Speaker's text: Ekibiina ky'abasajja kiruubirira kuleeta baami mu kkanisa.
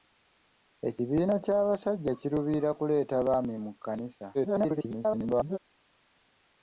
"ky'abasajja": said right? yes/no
yes